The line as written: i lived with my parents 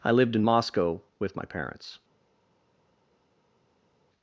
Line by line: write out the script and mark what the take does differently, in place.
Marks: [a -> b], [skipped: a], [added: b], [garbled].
i lived [added: in moscow] with my parents